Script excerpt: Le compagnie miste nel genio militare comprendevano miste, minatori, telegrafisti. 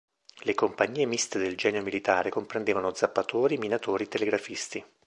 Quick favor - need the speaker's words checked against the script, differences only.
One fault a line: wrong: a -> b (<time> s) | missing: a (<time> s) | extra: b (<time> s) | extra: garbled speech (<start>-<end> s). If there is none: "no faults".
wrong: nel -> del (1.4 s)
wrong: miste -> zappatori (2.9 s)